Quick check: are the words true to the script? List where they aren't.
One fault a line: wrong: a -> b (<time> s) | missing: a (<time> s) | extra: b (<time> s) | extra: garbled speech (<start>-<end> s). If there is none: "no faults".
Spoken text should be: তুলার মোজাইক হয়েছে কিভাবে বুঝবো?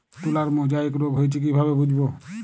extra: রোগ (0.9 s)